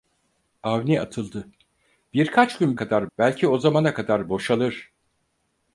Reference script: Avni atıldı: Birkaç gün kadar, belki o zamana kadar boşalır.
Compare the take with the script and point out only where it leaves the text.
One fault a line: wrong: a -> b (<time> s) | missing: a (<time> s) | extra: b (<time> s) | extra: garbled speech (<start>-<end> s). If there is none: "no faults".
no faults